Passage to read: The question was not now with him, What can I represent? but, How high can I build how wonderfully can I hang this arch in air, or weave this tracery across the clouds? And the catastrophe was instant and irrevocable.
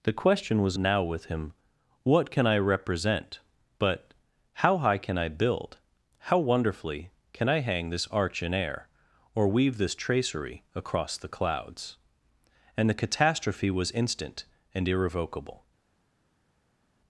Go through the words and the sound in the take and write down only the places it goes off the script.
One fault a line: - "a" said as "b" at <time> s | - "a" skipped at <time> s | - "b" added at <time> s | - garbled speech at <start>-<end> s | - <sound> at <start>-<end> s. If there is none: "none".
- "not" skipped at 0.8 s